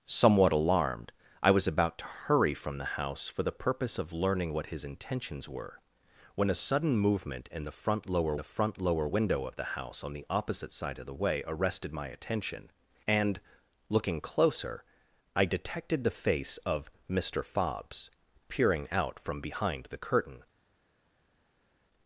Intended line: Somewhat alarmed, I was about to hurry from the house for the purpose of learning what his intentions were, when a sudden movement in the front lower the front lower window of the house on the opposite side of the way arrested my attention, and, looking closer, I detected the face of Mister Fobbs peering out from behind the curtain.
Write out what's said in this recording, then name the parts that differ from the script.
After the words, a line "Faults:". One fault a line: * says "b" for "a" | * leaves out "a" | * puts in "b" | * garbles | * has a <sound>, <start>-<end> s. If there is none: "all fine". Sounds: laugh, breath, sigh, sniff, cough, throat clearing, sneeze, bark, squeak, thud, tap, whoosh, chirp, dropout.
Somewhat alarmed, I was about to hurry from the house for the purpose of learning what his intentions were, when a sudden movement in the front lower the front lower window of the house on the opposite side of the way arrested my attention, and, looking closer, I detected the face of Mister Fobbs peering out from behind the curtain.
Faults:
all fine